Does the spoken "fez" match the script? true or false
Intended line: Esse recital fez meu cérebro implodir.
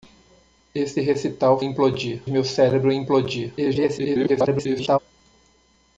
false